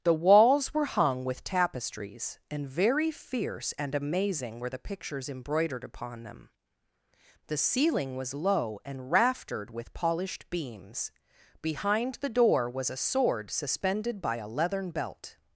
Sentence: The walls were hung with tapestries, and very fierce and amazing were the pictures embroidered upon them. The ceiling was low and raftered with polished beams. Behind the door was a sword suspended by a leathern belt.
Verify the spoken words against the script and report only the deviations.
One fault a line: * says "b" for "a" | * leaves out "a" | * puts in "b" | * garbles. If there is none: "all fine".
all fine